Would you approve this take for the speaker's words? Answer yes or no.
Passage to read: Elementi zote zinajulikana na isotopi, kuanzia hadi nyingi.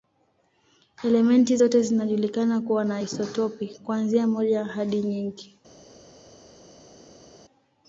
no